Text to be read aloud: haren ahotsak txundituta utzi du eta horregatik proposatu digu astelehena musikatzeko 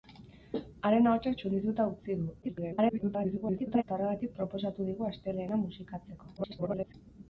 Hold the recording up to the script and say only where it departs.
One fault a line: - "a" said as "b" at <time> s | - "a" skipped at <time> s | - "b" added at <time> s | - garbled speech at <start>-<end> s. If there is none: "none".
- garbled speech at 2.4-3.8 s
- garbled speech at 6.4-6.9 s